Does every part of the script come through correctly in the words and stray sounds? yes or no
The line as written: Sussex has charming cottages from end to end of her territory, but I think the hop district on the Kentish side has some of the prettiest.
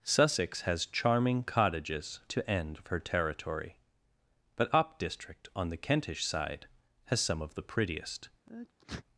no